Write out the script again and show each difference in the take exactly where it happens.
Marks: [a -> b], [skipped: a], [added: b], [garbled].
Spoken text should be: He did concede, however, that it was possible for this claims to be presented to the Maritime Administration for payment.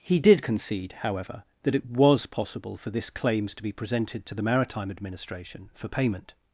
He did concede, however, that it was possible for this claims to be presented to the Maritime Administration for payment.